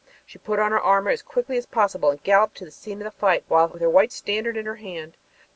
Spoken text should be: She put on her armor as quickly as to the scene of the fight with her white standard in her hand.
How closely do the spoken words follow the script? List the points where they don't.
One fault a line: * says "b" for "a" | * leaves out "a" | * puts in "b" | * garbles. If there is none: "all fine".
* puts in "possible and galloped"